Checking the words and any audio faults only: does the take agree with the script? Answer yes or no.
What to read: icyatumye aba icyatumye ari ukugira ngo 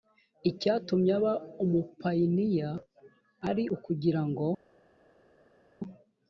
no